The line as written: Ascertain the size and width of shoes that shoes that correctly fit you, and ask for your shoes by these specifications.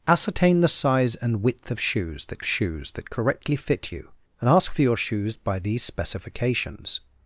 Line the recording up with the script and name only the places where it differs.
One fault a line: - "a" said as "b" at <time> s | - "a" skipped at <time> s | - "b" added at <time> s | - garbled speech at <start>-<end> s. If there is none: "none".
none